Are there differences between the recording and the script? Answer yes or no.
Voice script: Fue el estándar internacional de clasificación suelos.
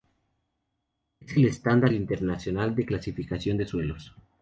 yes